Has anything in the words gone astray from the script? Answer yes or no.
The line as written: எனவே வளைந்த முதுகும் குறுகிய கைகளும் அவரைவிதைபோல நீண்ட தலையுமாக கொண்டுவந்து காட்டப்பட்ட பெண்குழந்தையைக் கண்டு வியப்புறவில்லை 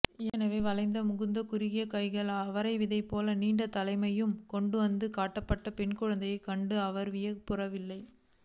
yes